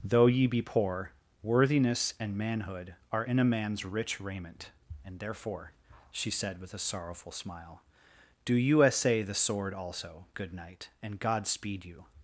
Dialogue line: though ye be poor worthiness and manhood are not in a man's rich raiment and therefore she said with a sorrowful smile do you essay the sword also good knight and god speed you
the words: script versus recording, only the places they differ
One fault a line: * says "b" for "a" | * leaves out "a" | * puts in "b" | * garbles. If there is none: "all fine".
* leaves out "not"